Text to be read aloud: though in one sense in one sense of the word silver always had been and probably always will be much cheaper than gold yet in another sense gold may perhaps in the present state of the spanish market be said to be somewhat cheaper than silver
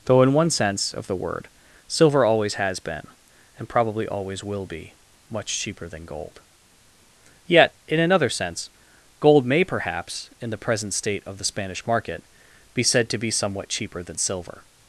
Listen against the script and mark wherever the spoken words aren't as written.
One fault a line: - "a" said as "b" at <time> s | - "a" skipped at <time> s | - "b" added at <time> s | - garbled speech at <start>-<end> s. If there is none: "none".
- "in one sense" skipped at 0.9 s
- "had" said as "has" at 2.5 s